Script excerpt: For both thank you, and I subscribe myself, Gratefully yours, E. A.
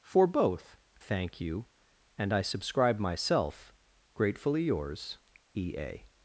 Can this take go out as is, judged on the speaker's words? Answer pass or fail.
pass